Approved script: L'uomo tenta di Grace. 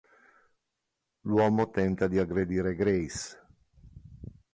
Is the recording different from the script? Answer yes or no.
yes